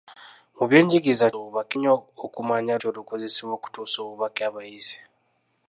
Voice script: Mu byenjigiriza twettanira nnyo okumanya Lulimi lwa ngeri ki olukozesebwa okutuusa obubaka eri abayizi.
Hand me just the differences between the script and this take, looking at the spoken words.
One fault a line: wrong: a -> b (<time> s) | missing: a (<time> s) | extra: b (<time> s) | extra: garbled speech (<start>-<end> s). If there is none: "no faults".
wrong: twettanira -> obubaka (1.4 s)
missing: Lulimi lwa ngeri (2.7 s)
missing: eri (4.4 s)